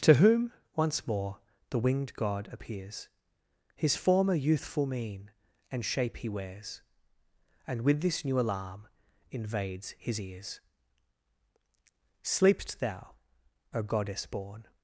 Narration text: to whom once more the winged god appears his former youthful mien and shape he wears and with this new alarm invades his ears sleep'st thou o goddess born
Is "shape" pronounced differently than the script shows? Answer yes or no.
no